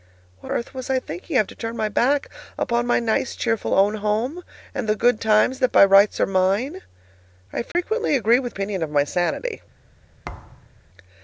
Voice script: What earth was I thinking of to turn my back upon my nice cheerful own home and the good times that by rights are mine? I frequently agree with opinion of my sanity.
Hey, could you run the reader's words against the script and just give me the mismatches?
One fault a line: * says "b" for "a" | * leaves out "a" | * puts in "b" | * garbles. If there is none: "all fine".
all fine